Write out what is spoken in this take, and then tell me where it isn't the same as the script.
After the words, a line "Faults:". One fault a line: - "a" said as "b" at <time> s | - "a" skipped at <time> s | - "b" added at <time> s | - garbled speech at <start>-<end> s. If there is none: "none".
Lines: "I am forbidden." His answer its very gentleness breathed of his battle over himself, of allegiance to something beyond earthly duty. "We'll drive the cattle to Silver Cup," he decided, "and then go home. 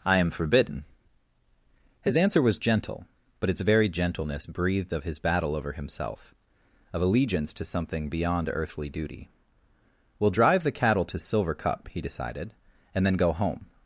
"I am forbidden." His answer was gentle, but its very gentleness breathed of his battle over himself, of allegiance to something beyond earthly duty. "We'll drive the cattle to Silver Cup," he decided, "and then go home.
Faults:
- "was gentle but" added at 2.4 s